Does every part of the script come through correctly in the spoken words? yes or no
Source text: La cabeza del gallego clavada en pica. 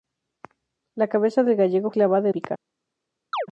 yes